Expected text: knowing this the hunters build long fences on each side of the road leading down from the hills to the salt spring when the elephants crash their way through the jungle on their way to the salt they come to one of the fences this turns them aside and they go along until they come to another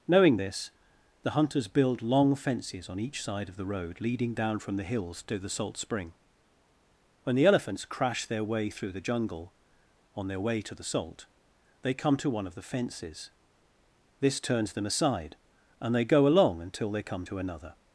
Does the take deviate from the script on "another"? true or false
false